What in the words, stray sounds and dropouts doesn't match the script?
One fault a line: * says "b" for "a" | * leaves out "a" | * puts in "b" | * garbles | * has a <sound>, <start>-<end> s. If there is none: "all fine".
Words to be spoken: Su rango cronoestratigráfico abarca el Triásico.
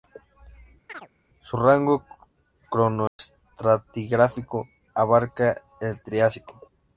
* has a chirp, 0.9-1.1 s
* has a dropout, 3.1-3.2 s